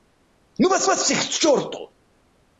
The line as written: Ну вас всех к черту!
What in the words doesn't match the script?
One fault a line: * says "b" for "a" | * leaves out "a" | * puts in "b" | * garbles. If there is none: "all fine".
* puts in "вас"